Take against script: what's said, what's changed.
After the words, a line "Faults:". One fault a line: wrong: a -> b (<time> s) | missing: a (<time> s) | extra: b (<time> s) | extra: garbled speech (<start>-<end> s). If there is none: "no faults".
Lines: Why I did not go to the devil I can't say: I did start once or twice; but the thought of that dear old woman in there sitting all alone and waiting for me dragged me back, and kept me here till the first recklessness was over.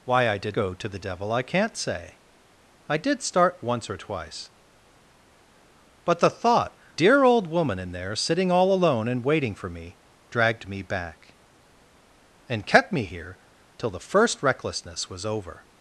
Why I did go to the devil I can't say: I did start once or twice; but the thought dear old woman in there sitting all alone and waiting for me dragged me back, and kept me here till the first recklessness was over.
Faults:
missing: not (0.6 s)
missing: of that (6.8 s)